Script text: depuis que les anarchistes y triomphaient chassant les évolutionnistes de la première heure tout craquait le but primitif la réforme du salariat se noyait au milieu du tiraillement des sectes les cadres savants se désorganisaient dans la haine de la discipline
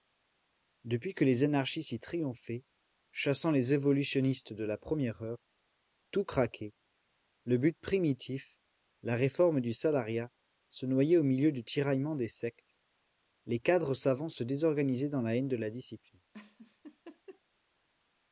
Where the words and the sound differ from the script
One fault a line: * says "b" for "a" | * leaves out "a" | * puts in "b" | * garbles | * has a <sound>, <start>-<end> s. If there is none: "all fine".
* has a laugh, 16.3-17.4 s